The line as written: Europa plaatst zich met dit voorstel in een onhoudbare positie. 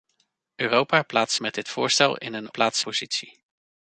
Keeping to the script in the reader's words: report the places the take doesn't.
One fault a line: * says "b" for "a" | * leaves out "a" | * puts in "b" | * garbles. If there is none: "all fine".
* leaves out "zich"
* says "plaatst" for "onhoudbare"